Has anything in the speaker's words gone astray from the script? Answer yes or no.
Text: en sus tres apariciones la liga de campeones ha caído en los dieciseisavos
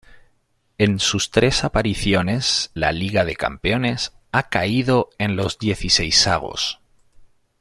no